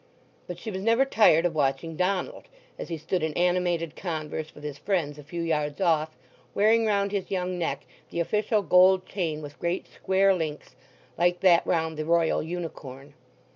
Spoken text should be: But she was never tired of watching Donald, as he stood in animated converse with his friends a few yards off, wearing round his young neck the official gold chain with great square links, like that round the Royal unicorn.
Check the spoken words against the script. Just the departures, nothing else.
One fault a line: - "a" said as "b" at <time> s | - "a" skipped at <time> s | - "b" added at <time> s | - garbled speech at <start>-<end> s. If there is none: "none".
none